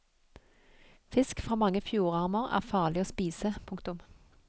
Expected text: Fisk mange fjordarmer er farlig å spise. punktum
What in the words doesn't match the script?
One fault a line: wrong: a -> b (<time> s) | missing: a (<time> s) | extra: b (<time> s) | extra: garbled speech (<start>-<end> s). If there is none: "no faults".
extra: fra (1.4 s)